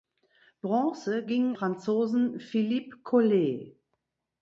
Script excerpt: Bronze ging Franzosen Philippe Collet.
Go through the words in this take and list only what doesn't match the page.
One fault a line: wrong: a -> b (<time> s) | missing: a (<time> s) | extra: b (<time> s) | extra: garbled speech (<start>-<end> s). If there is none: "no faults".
no faults